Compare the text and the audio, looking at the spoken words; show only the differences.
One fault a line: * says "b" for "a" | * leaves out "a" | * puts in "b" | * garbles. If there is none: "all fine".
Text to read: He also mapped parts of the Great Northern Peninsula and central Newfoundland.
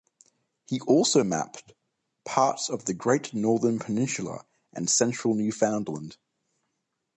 all fine